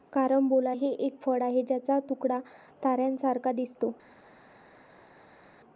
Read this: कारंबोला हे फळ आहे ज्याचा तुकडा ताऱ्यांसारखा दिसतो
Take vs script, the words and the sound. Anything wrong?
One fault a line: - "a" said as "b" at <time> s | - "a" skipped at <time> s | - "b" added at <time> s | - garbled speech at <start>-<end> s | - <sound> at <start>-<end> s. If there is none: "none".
- "एक" added at 1.0 s